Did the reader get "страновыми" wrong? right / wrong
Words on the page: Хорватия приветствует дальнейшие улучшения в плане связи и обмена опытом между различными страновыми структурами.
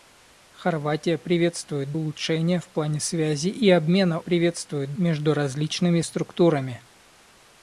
wrong